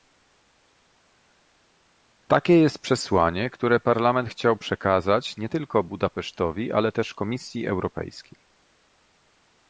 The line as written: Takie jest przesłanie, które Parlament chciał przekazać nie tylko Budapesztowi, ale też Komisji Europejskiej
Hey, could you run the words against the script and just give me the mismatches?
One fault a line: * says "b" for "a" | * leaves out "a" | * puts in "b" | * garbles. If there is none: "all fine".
all fine